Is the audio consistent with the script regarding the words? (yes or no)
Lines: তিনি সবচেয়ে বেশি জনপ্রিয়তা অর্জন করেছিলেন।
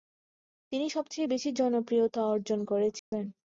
yes